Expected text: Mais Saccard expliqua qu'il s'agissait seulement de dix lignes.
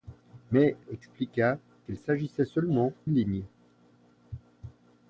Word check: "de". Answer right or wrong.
wrong